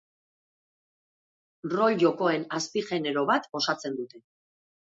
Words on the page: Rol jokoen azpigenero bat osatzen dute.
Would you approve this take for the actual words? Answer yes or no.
yes